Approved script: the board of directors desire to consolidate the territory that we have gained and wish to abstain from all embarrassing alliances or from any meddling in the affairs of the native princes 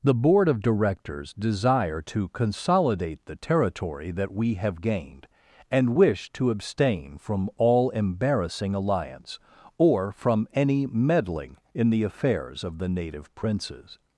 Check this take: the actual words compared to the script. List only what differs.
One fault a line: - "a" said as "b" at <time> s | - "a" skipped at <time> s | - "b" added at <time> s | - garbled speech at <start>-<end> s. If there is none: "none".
- "alliances" said as "alliance" at 8.7 s